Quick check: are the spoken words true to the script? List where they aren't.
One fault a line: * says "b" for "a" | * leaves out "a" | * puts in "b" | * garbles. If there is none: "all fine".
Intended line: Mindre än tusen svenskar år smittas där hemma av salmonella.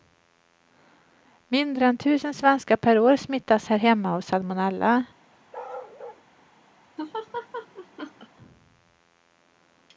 * puts in "per"
* says "här" for "där"